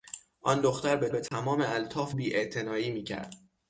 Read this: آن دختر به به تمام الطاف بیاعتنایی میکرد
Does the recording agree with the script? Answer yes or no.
yes